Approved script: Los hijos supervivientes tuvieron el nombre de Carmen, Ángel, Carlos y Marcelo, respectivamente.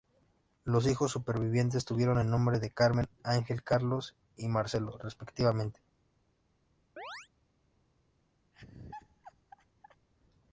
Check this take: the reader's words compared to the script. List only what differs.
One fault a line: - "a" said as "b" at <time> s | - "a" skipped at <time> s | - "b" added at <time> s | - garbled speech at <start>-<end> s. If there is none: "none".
none